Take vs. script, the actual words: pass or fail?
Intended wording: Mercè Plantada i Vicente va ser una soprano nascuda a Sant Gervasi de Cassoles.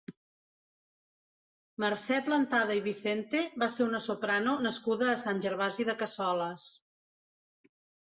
pass